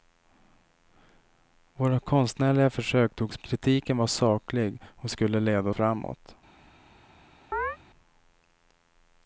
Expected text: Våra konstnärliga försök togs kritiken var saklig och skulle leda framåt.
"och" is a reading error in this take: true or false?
false